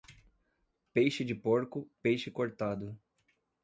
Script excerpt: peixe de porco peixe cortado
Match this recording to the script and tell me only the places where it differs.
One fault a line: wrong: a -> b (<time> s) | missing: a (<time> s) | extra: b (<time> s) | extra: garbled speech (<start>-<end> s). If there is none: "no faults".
no faults